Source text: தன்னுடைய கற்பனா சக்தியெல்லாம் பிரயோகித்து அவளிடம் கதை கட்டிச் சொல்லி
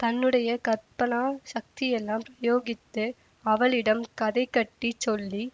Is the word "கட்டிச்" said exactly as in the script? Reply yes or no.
yes